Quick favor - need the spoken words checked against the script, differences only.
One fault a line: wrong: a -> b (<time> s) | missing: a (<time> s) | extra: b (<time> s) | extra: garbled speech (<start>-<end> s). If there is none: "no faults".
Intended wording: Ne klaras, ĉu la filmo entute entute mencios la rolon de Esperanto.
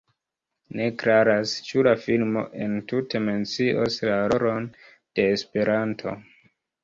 missing: entute (3.2 s)